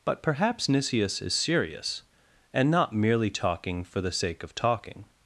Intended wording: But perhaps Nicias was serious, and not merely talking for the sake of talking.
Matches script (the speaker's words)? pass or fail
fail